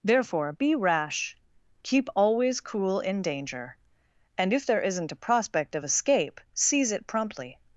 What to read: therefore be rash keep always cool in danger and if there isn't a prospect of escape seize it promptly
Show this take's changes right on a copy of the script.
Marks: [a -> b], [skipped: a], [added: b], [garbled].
therefore be rash keep always cool in danger and if there isn't a prospect of escape seize it promptly